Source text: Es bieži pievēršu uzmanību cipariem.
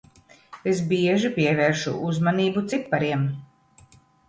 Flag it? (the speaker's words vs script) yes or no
no